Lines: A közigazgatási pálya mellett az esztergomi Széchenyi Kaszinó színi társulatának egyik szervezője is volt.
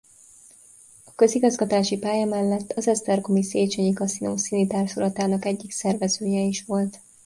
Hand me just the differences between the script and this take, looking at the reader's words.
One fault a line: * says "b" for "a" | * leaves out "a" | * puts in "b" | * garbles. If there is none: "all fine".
all fine